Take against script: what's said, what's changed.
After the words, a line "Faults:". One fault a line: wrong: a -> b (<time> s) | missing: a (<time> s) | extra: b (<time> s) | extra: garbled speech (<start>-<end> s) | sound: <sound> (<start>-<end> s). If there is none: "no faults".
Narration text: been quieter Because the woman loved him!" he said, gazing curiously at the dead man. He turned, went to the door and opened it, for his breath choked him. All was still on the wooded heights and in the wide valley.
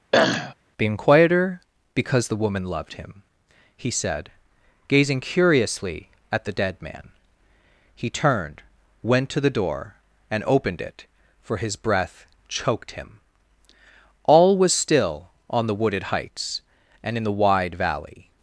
been quieter Because the woman loved him!" he said, gazing curiously at the dead man. He turned, went to the door and opened it, for his breath choked him. All was still on the wooded heights and in the wide valley.
Faults:
sound: throat clearing (0.1-0.5 s)